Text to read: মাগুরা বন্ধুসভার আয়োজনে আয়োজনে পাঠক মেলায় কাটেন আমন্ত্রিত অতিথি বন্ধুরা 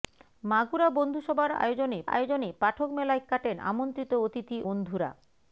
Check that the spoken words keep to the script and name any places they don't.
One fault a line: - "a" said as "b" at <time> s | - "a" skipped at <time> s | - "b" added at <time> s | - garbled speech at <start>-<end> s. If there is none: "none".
none